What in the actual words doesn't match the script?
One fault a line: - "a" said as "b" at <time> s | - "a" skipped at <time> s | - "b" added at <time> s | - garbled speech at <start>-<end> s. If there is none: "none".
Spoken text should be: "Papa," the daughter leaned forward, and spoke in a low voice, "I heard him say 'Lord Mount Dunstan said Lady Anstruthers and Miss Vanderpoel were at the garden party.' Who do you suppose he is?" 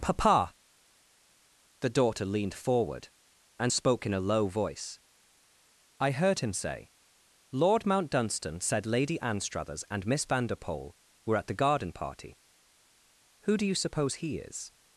none